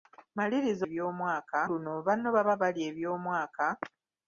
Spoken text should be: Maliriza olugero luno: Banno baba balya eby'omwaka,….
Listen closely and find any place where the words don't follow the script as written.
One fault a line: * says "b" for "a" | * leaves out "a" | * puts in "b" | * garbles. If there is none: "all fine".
* says "eby'omwaka" for "olugero"